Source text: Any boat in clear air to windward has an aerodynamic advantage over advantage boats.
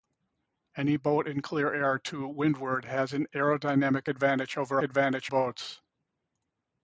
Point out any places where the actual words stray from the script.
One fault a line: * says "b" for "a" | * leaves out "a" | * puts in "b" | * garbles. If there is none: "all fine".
all fine